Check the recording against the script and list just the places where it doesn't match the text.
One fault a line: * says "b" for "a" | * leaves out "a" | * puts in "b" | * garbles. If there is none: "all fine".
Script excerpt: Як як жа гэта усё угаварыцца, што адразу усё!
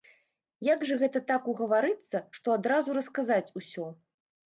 * leaves out "як"
* says "так" for "усё"
* puts in "расказаць"